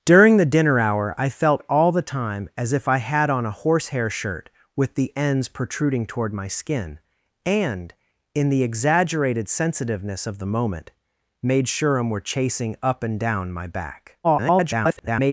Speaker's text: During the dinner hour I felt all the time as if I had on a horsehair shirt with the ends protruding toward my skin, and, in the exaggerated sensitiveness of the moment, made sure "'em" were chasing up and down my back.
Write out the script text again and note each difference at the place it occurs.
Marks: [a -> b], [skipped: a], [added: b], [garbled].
During the dinner hour I felt all the time as if I had on a horsehair shirt with the ends protruding toward my skin, and, in the exaggerated sensitiveness of the moment, made sure "'em" were chasing up and down my back. [garbled]